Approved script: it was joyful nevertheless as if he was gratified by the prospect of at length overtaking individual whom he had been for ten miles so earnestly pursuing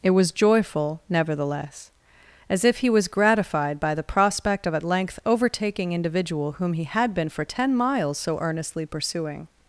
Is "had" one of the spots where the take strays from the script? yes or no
no